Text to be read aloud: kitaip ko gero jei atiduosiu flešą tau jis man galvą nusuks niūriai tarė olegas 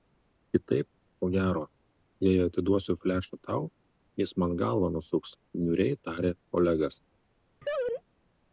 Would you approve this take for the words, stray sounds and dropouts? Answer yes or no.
no